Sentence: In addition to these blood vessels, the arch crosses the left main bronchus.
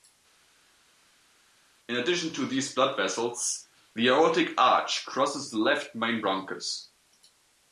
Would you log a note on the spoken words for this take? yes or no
yes